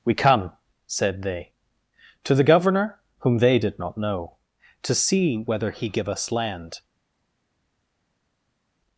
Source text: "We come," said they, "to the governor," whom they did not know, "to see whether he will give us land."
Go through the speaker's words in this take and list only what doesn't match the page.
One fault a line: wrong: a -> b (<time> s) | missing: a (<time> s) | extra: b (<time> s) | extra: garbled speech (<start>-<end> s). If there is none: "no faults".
missing: will (5.9 s)